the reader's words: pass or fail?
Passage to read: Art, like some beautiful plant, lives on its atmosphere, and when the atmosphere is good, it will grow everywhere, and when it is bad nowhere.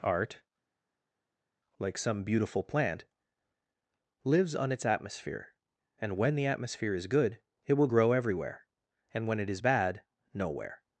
pass